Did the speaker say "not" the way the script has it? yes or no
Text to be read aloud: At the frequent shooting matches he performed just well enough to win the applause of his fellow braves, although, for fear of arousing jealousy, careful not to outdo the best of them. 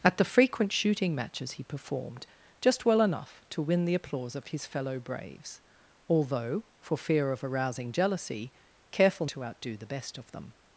no